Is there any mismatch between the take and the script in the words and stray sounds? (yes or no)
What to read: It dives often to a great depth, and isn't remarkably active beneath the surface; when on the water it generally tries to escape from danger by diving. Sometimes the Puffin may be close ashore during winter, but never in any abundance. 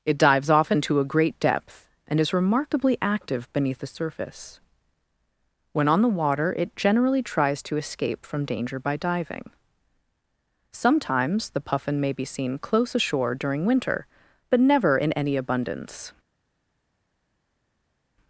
yes